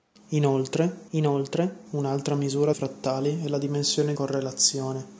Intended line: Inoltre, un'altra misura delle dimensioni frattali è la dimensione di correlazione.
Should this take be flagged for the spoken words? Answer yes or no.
yes